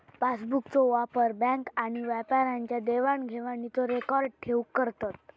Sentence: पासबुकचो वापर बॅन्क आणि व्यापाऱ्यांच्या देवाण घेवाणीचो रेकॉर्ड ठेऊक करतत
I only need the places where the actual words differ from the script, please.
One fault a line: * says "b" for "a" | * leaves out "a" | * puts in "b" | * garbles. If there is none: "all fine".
all fine